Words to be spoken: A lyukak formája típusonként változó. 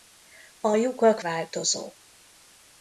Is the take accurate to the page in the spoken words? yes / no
no